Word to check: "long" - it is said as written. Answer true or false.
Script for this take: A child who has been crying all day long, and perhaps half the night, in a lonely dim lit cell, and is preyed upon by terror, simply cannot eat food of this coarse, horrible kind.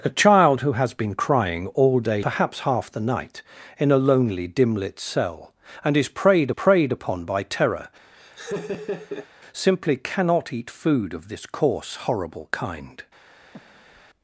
false